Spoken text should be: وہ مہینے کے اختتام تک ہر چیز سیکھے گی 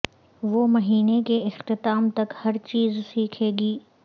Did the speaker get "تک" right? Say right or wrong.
right